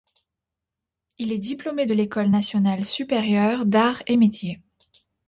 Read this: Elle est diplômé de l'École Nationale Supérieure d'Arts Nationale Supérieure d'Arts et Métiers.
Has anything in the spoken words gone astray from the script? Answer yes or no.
yes